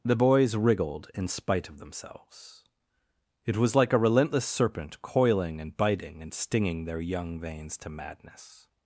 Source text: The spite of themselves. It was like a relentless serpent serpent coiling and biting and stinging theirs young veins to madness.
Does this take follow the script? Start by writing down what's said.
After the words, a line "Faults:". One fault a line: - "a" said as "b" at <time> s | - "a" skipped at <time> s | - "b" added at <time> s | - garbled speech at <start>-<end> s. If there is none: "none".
The boys wriggled in spite of themselves. It was like a relentless serpent coiling and biting and stinging their young veins to madness.
Faults:
- "boys wriggled in" added at 0.1 s
- "serpent" skipped at 5.0 s
- "theirs" said as "their" at 6.8 s